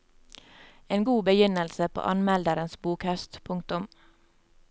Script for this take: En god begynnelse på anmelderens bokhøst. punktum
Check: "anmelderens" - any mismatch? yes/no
no